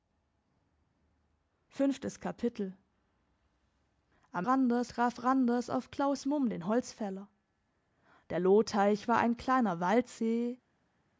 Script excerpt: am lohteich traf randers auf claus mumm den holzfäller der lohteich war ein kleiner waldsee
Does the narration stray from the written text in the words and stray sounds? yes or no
yes